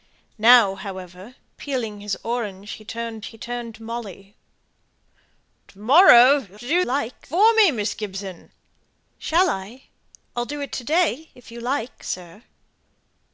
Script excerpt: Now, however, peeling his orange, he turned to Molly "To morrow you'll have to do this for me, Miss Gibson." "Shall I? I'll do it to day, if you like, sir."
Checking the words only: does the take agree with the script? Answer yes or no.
no